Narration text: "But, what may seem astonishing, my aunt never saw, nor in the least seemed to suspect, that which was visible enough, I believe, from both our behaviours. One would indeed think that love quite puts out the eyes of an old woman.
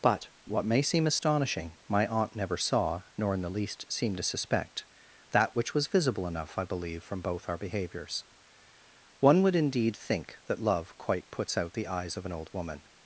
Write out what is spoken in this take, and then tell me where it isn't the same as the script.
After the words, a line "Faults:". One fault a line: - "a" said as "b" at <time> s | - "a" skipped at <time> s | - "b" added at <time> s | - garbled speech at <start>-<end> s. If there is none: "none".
"But, what may seem astonishing, my aunt never saw, nor in the least seemed to suspect, that which was visible enough, I believe, from both our behaviours. One would indeed think that love quite puts out the eyes of an old woman.
Faults:
none